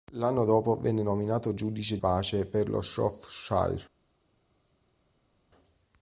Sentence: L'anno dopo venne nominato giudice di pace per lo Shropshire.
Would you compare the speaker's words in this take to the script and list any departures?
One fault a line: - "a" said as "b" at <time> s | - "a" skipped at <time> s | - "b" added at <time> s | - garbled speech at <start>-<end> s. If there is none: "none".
- "di" skipped at 2.0 s